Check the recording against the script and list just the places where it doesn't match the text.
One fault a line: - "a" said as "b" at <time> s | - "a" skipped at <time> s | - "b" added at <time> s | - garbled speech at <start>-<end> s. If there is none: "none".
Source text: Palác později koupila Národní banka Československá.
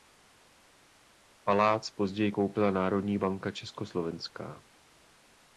none